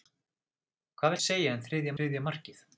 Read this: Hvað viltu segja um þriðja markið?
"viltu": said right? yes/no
no